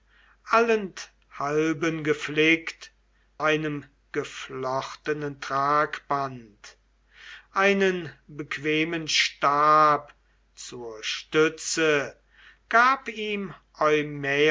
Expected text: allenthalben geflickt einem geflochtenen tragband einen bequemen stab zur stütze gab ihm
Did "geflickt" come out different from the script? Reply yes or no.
no